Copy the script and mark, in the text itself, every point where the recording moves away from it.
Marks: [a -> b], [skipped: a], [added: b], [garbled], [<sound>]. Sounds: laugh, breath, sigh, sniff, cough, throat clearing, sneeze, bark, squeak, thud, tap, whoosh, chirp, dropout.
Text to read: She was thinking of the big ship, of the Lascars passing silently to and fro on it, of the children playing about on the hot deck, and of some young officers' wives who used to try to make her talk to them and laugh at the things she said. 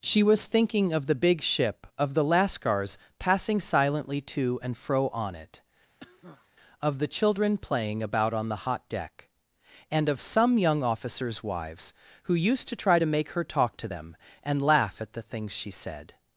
She was thinking of the big ship, of the Lascars passing silently to and fro on it, [cough] of the children playing about on the hot deck, and of some young officers' wives who used to try to make her talk to them and laugh at the things she said.